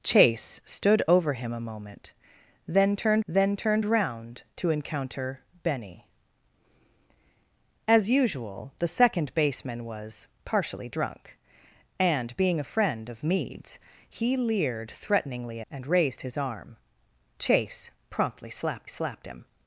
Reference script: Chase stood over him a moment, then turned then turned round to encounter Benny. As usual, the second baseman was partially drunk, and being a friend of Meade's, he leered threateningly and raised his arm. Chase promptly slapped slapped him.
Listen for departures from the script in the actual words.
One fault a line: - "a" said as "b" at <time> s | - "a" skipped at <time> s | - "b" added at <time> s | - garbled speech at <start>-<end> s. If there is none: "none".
none